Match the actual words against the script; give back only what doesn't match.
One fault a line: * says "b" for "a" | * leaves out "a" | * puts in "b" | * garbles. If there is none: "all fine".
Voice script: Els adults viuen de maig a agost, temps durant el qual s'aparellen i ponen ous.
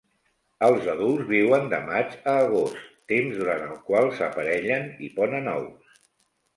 all fine